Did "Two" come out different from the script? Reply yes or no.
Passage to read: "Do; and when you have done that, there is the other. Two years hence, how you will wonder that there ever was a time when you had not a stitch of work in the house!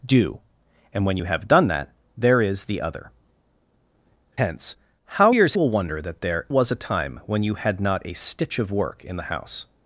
yes